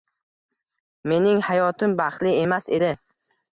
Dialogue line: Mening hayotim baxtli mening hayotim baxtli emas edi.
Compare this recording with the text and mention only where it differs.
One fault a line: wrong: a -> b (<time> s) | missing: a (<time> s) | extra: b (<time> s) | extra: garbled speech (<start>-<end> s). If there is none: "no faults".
missing: mening hayotim baxtli (2.4 s)